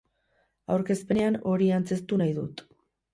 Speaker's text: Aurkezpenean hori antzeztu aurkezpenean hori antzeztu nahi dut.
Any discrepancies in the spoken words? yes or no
yes